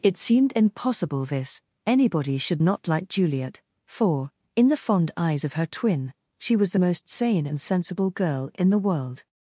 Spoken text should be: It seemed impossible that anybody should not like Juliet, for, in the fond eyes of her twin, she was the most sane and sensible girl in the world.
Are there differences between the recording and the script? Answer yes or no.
yes